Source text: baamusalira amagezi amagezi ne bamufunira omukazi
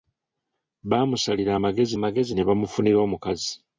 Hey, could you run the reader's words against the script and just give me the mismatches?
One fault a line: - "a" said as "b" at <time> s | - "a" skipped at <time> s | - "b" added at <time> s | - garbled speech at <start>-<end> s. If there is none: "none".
none